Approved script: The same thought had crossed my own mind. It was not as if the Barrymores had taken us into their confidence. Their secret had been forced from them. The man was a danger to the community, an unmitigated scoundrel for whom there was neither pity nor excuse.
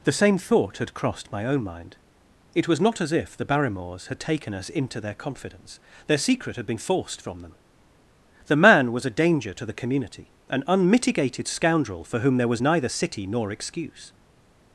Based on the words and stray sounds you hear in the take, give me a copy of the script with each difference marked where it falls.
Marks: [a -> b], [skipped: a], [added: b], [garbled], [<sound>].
The same thought had crossed my own mind. It was not as if the Barrymores had taken us into their confidence. Their secret had been forced from them. The man was a danger to the community, an unmitigated scoundrel for whom there was neither [pity -> city] nor excuse.